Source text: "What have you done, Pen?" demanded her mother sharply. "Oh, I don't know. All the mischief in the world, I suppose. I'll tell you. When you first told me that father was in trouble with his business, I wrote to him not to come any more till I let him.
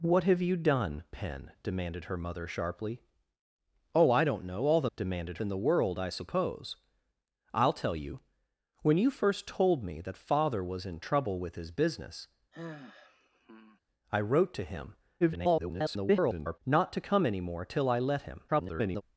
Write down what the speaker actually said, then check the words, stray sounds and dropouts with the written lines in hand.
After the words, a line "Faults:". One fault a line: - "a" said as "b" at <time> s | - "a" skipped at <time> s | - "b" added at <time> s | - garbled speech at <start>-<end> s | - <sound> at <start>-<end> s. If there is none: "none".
"What have you done, Pen?" demanded her mother sharply. "Oh, I don't know. All the demanded in the world, I suppose. I'll tell you. When you first told me that father was in trouble with his business, I wrote to him [garbled] not to come any more till I let him. [garbled]
Faults:
- "mischief" said as "demanded" at 4.9 s
- sigh at 12.5-13.8 s
- garbled speech at 15.2-16.6 s
- garbled speech at 18.5-19.0 s